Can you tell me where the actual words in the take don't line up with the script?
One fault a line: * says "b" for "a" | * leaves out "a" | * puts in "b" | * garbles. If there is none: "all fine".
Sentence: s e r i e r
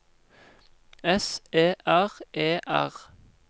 * leaves out "i"